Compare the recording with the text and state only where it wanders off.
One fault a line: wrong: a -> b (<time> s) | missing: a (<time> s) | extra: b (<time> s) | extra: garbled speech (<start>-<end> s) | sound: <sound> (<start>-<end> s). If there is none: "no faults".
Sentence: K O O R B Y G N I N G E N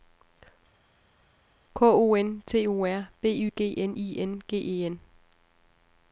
extra: N T (2.1 s)